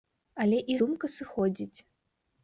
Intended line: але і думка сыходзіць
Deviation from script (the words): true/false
false